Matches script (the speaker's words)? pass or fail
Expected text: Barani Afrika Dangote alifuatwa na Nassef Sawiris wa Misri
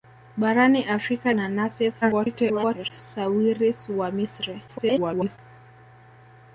fail